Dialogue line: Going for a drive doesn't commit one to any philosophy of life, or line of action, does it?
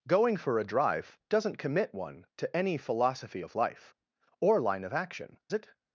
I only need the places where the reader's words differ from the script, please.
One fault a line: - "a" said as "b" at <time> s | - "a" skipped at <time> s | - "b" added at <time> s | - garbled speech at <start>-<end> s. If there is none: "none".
- "does" skipped at 5.4 s